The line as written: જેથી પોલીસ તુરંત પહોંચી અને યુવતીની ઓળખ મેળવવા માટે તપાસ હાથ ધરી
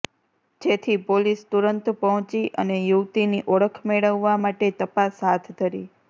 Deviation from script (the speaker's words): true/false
false